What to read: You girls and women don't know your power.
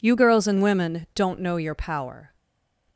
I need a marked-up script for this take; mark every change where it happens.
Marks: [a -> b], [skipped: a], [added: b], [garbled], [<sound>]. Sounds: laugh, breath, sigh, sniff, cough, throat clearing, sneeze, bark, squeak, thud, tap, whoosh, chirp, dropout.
You girls and women don't know your power.